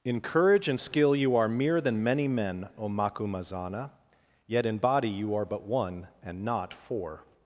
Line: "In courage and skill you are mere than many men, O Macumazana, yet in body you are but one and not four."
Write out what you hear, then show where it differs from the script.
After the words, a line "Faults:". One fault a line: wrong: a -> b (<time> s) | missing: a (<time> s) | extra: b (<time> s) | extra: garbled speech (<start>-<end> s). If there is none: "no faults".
"In courage and skill you are mere than many men, O Macumazana, yet in body you are but one and not four."
Faults:
no faults